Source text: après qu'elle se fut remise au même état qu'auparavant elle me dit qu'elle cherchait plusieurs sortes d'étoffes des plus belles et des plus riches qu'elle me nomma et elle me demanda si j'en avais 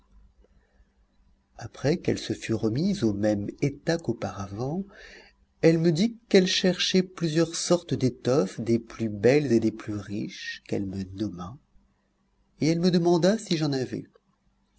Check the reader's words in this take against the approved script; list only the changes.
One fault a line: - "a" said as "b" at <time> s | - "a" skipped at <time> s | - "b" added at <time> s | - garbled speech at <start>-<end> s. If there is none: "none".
none